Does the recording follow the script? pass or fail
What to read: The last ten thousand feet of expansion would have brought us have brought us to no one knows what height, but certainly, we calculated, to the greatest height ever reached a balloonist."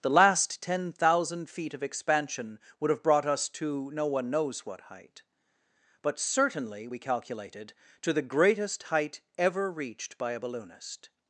fail